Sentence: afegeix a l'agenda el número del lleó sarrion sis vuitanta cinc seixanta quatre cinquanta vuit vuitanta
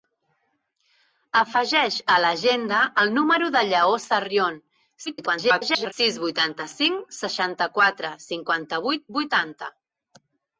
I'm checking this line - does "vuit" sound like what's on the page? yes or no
yes